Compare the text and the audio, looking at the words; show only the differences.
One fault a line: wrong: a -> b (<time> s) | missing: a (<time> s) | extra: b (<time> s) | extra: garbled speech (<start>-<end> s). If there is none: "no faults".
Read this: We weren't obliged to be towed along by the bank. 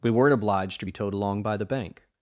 no faults